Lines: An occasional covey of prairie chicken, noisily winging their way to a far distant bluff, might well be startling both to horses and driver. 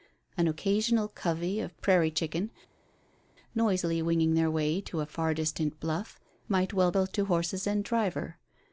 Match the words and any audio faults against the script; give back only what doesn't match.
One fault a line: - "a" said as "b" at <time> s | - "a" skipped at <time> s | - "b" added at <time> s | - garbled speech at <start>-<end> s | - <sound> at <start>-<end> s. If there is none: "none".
- "be startling" skipped at 6.9 s